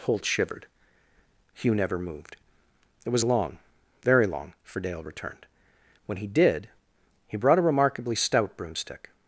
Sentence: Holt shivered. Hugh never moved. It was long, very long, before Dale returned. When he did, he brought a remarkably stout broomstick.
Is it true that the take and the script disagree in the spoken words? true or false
true